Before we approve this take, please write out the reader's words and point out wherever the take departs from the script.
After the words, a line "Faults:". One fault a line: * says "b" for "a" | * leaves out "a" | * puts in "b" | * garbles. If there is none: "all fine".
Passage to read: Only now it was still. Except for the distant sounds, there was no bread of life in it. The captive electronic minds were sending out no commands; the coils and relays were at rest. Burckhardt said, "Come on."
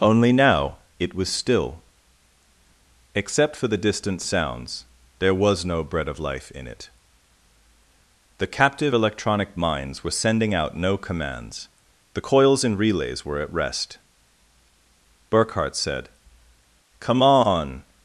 Only now it was still. Except for the distant sounds, there was no bread of life in it. The captive electronic minds were sending out no commands; the coils and relays were at rest. Burckhardt said, "Come on."
Faults:
all fine